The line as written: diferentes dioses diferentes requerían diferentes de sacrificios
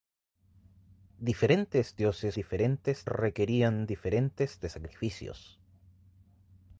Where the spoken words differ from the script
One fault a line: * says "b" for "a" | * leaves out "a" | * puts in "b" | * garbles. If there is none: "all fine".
all fine